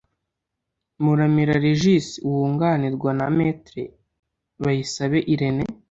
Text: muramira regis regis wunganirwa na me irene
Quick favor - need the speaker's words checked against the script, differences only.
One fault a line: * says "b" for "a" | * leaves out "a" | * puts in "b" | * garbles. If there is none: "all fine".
* leaves out "regis"
* puts in "bayisabe"